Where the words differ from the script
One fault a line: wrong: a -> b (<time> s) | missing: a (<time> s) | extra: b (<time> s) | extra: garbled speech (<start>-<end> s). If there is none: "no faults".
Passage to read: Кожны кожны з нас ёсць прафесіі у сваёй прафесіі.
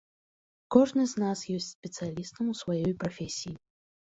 missing: кожны (1.0 s)
wrong: прафесіі -> спецыялістам (1.8 s)